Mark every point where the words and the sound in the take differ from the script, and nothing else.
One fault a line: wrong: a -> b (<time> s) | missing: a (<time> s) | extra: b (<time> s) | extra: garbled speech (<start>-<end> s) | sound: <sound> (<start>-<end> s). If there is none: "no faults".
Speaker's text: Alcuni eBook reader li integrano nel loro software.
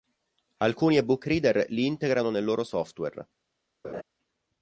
sound: laugh (3.8-4.0 s)